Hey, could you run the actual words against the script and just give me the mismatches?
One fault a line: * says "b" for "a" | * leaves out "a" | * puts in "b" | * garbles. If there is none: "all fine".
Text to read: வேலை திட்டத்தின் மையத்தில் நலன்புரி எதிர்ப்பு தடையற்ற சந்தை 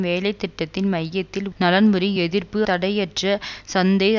all fine